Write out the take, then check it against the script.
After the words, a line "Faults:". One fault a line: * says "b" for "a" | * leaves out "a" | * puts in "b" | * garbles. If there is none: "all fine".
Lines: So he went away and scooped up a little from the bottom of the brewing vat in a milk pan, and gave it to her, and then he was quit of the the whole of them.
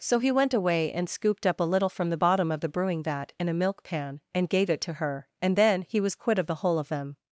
So he went away and scooped up a little from the bottom of the brewing vat in a milk pan, and gave it to her, and then he was quit of the whole of them.
Faults:
* leaves out "the"